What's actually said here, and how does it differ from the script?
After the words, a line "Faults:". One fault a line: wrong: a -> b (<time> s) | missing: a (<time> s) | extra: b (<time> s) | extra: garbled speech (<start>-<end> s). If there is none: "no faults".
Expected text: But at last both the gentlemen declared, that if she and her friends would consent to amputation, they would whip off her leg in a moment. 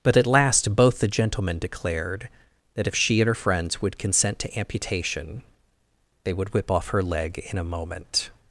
But at last both the gentlemen declared, that if she and her friends would consent to amputation, they would whip off her leg in a moment.
Faults:
no faults